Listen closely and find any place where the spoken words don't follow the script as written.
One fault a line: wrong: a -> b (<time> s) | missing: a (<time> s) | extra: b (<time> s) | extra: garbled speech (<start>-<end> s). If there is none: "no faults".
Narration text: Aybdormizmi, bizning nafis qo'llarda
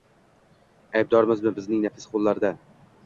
no faults